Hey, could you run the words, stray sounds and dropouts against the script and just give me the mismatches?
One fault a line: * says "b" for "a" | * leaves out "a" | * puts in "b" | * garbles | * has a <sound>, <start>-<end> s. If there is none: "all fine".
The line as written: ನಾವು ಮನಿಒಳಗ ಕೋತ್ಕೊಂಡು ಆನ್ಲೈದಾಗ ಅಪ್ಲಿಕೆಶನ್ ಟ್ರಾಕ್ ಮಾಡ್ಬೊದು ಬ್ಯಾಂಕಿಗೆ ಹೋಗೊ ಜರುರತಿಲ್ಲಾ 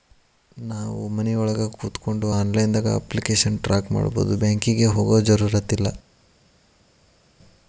all fine